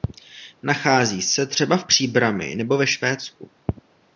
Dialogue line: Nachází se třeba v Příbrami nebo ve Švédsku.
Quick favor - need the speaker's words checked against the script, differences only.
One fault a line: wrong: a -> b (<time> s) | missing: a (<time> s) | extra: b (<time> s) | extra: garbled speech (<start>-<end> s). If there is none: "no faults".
no faults